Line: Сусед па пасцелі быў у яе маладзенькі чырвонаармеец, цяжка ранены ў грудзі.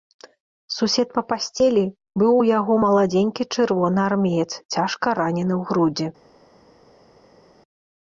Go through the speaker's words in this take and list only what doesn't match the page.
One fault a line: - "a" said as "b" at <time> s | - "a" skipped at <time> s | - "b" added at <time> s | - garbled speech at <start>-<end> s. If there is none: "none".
- "яе" said as "яго" at 2.6 s